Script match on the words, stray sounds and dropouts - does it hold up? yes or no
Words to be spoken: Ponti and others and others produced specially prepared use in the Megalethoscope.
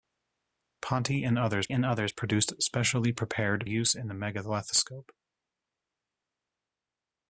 yes